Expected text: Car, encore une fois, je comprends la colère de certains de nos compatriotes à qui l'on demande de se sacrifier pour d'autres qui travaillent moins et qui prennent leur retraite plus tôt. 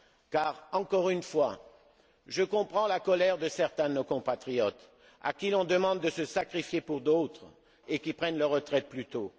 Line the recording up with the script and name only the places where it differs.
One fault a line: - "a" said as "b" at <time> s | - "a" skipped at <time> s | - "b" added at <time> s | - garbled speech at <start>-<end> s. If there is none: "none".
- "qui travaillent moins" skipped at 7.5 s